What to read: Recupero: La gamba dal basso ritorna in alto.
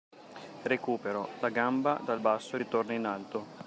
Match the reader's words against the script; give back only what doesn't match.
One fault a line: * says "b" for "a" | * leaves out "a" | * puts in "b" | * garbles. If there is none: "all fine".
all fine